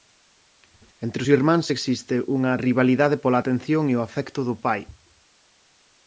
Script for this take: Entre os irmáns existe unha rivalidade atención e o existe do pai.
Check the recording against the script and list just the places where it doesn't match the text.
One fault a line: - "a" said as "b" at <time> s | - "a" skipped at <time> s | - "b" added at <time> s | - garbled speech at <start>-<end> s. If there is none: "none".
- "pola" added at 3.2 s
- "existe" said as "afecto" at 4.1 s